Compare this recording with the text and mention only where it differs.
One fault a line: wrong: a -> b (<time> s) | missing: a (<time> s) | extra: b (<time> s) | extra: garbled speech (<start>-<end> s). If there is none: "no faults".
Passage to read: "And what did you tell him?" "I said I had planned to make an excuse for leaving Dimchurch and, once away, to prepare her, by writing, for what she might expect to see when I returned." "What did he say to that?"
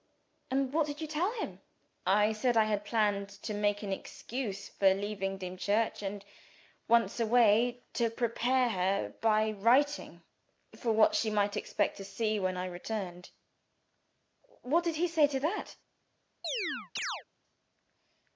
no faults